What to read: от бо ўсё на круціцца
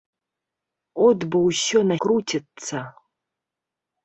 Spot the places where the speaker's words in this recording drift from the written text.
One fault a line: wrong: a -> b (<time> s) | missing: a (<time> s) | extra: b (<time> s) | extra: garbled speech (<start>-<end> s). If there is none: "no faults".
no faults